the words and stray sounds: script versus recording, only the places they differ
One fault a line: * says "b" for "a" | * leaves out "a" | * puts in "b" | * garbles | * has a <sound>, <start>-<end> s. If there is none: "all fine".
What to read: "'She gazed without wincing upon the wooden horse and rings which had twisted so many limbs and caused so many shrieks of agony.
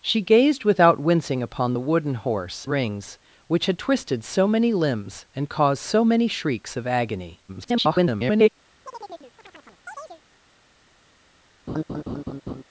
* leaves out "and"
* garbles
* has a chirp, 8.9-10.2 s
* has a laugh, 11.7-12.6 s